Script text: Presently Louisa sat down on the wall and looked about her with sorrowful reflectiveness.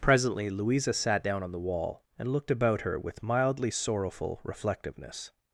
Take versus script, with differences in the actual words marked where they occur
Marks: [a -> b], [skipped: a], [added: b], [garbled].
Presently Louisa sat down on the wall and looked about her with [added: mildly] sorrowful reflectiveness.